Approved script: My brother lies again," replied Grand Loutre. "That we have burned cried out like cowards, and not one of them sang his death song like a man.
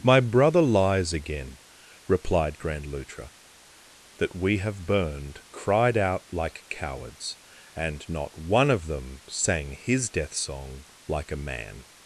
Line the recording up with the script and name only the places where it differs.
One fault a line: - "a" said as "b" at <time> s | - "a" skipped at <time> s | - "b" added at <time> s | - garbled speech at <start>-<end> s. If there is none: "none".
none